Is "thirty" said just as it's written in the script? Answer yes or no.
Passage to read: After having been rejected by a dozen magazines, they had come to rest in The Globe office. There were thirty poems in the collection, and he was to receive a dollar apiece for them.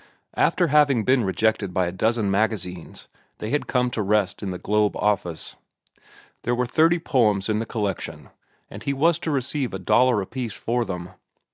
yes